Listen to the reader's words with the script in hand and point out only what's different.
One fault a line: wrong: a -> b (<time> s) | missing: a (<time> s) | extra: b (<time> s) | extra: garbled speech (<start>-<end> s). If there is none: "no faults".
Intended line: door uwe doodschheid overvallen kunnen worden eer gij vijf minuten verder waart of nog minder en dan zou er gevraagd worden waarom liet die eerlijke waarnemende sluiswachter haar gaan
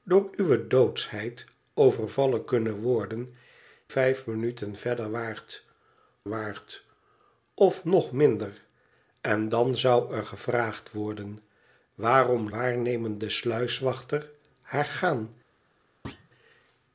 missing: eer gij (3.3 s)
extra: waart (6.3 s)
missing: liet die eerlijke (12.5 s)